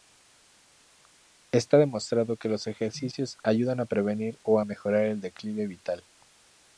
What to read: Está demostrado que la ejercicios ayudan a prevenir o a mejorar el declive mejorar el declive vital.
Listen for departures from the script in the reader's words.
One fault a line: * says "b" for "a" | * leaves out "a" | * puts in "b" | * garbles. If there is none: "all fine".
* says "los" for "la"
* leaves out "mejorar el declive"